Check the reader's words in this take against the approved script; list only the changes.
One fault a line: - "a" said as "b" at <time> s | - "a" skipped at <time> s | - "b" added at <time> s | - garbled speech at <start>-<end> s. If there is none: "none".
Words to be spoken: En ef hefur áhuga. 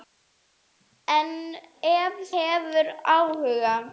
none